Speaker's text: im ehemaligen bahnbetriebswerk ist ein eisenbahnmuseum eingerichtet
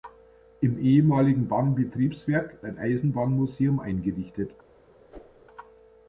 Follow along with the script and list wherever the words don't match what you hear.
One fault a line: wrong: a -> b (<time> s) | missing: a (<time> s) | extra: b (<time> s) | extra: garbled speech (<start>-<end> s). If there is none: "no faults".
missing: ist (2.6 s)